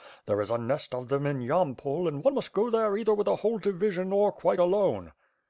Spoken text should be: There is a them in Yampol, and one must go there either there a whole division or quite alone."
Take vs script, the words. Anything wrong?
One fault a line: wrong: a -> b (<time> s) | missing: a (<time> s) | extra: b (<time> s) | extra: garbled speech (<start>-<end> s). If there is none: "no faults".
extra: nest of (0.6 s)
wrong: there -> with (3.1 s)